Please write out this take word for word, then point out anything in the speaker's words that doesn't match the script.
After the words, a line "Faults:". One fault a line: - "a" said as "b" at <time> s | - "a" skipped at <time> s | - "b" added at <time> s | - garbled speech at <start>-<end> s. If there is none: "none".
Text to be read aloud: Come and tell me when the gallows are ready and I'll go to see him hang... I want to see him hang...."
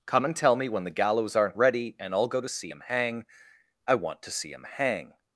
Come and tell me when the gallows aren't ready and I'll go to see him hang... I want to see him hang...."
Faults:
- "are" said as "aren't" at 1.4 s